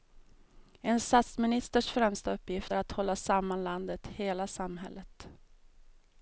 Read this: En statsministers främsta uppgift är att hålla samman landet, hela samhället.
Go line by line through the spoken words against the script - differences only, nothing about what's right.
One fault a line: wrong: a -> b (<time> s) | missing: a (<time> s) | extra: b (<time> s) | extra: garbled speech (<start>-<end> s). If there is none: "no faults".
no faults